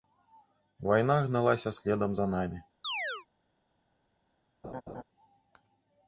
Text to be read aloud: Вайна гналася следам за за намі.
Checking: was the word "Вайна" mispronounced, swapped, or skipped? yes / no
no